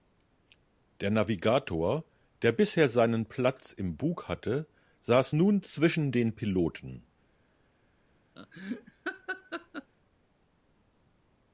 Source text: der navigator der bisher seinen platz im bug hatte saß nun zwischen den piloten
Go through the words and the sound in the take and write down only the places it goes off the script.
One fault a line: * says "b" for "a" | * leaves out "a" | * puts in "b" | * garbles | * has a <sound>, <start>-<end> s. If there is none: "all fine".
* has a laugh, 8.4-9.9 s